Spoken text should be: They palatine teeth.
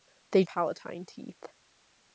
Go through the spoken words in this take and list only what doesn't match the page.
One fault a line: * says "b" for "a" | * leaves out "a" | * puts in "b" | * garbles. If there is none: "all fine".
all fine